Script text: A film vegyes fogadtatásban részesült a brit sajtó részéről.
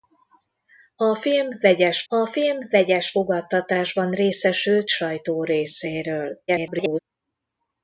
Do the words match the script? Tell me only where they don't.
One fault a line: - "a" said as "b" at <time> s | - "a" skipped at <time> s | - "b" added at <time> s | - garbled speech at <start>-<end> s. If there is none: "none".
- "a film vegyes" added at 2.1 s
- "a brit" skipped at 4.9 s
- garbled speech at 6.5-7.0 s